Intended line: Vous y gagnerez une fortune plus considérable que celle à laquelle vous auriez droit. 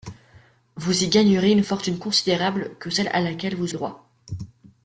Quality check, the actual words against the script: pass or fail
fail